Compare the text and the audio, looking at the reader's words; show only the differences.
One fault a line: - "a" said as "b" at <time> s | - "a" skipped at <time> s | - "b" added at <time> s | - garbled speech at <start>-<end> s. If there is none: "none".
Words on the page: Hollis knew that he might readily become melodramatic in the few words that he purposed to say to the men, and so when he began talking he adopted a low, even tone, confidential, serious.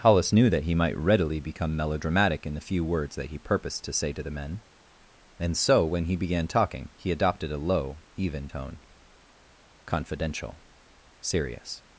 none